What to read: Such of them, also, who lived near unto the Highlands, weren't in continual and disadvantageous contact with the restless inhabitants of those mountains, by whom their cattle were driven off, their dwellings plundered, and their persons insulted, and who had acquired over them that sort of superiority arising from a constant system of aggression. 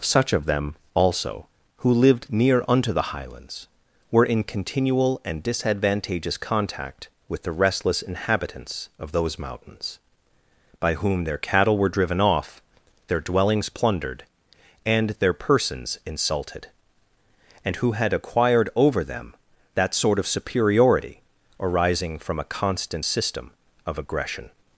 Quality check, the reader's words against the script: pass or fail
fail